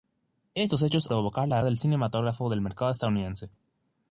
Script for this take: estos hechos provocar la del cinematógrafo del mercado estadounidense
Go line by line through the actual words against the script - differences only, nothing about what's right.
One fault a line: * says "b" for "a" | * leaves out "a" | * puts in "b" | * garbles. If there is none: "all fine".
all fine